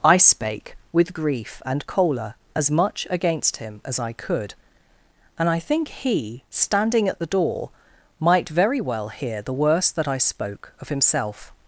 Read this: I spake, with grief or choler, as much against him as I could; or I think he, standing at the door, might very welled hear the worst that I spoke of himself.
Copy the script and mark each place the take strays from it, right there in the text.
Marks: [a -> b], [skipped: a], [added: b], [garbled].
I spake, with grief [or -> and] choler, as much against him as I could; [or -> and] I think he, standing at the door, might very [welled -> well] hear the worst that I spoke of himself.